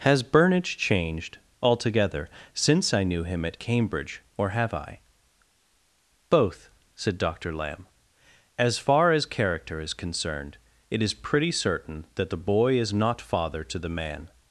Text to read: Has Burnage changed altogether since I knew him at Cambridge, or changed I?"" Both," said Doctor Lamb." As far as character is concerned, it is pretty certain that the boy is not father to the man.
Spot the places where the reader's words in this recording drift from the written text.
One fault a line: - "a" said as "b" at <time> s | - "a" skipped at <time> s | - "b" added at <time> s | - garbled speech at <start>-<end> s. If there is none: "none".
- "changed" said as "have" at 4.5 s